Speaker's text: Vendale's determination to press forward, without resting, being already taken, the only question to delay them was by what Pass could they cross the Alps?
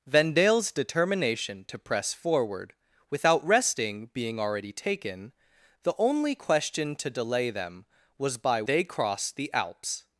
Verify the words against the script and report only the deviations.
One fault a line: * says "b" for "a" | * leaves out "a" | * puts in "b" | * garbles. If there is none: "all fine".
* leaves out "what Pass could"